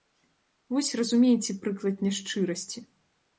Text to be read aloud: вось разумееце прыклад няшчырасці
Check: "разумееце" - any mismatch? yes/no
no